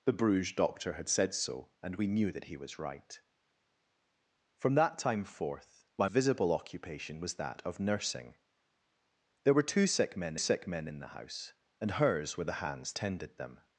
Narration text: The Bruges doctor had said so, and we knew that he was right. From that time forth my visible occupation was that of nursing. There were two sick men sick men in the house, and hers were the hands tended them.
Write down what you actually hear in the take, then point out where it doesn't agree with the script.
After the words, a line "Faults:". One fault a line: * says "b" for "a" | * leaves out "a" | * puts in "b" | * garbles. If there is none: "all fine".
The Bruges doctor had said so, and we knew that he was right. From that time forth my visible occupation was that of nursing. There were two sick men sick men in the house, and hers were the hands tended them.
Faults:
all fine